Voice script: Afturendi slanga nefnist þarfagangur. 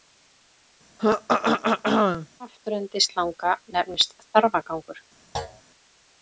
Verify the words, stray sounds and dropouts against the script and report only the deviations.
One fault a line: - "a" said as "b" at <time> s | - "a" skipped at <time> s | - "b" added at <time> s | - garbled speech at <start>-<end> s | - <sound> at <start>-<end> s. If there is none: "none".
- throat clearing at 1.0-2.3 s
- thud at 5.3-5.6 s